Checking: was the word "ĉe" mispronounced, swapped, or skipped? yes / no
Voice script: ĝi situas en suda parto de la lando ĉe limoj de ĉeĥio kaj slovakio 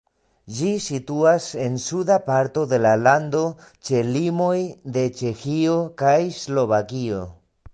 no